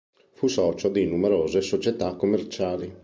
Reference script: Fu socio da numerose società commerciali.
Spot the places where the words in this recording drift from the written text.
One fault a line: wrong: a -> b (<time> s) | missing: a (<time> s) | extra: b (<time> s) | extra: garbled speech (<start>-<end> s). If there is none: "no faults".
wrong: da -> di (0.9 s)